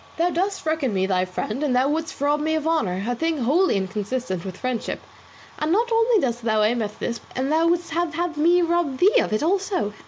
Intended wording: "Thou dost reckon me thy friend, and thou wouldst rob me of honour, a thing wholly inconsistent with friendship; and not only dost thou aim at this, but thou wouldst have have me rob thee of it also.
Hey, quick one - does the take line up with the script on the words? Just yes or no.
yes